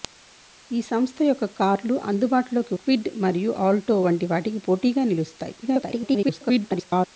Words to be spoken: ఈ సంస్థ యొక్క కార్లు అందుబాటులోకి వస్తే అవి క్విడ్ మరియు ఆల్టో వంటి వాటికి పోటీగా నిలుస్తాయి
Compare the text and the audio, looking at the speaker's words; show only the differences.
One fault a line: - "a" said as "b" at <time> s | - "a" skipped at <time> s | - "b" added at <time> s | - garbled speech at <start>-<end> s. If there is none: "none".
- "వస్తే అవి" skipped at 2.8 s
- garbled speech at 5.6-7.1 s